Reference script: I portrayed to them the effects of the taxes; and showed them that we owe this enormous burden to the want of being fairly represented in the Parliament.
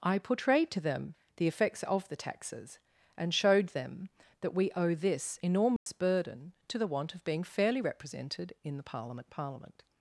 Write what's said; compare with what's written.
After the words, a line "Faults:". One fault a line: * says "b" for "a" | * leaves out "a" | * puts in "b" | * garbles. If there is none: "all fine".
I portrayed to them the effects of the taxes; and showed them that we owe this enormous burden to the want of being fairly represented in the Parliament Parliament.
Faults:
* puts in "Parliament"